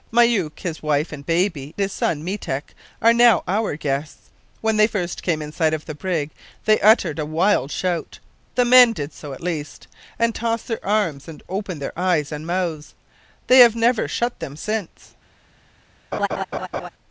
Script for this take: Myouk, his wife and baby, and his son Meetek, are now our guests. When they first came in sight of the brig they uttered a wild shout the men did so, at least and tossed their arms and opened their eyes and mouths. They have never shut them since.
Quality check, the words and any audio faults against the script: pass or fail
fail